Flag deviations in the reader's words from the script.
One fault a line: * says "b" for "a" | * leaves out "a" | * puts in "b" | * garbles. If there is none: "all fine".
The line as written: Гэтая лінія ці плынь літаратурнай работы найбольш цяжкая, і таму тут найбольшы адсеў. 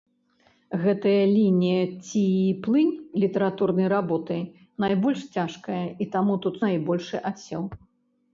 all fine